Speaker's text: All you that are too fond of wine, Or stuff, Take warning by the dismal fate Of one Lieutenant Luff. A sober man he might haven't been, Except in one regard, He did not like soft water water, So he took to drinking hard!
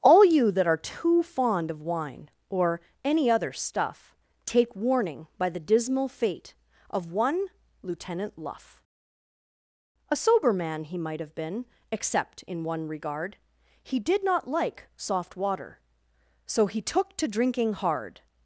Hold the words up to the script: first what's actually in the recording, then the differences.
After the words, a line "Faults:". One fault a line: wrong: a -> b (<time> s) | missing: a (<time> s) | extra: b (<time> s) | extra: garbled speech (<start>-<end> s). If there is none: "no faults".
All you that are too fond of wine, Or any other stuff, Take warning by the dismal fate Of one Lieutenant Luff. A sober man he might have been, Except in one regard, He did not like soft water, So he took to drinking hard!
Faults:
extra: any other (3.0 s)
wrong: haven't -> have (11.2 s)
missing: water (15.8 s)